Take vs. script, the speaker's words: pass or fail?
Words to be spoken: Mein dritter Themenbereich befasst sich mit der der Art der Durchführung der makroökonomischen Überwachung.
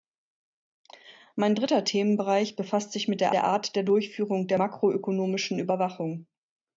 pass